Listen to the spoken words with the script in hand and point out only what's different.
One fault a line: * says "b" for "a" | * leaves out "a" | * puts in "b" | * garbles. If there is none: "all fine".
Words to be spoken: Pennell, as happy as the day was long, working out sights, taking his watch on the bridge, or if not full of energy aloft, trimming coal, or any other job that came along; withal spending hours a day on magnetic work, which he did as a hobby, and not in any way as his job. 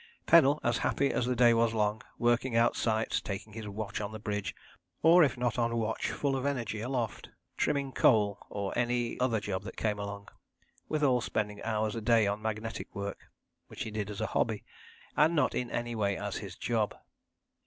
* puts in "on watch"